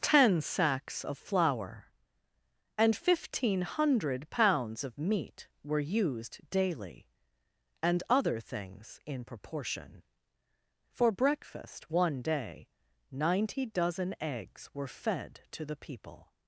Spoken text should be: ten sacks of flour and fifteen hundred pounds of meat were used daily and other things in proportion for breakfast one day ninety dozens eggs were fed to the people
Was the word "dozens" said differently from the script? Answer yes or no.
yes